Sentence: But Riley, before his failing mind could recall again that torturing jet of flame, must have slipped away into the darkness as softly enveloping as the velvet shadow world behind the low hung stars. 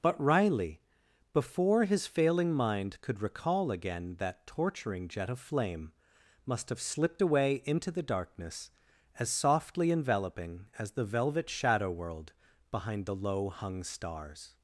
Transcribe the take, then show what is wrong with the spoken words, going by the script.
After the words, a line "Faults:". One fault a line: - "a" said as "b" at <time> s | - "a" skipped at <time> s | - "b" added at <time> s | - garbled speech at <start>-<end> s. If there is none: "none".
But Riley, before his failing mind could recall again that torturing jet of flame, must have slipped away into the darkness as softly enveloping as the velvet shadow world behind the low hung stars.
Faults:
none